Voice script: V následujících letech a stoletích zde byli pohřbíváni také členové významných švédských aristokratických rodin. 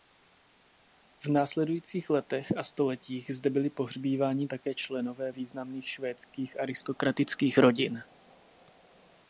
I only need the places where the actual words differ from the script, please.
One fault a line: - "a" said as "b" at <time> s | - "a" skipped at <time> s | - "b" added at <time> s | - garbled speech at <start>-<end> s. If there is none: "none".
none